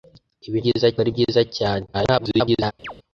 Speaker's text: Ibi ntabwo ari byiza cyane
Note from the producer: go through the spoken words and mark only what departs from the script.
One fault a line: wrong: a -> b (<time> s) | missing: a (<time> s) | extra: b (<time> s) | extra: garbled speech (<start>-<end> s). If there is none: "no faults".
wrong: ntabwo -> byiza (0.6 s)
extra: garbled speech (1.9-2.7 s)